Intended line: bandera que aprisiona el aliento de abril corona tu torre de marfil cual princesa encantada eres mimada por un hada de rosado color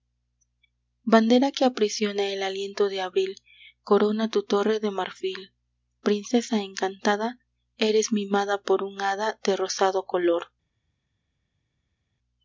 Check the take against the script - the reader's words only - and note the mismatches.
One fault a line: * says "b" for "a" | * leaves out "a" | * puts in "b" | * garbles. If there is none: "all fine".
* leaves out "cual"